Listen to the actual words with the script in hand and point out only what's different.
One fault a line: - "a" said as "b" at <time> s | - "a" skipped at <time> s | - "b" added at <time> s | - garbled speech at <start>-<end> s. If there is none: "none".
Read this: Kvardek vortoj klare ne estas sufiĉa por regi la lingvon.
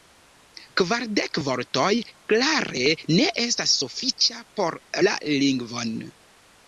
- "regi" skipped at 4.8 s